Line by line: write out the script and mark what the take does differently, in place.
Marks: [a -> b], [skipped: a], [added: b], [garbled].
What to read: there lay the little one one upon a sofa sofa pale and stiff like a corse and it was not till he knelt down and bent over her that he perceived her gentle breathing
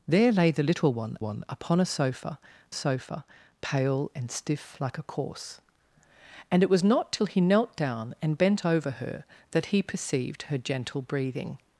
there lay the little one one upon a sofa sofa pale and stiff like a corse and it was not till he knelt down and bent over her that he perceived her gentle breathing